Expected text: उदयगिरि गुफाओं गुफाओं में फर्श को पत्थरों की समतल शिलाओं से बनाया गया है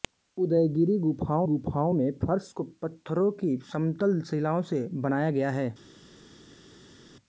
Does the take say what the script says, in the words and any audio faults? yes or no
yes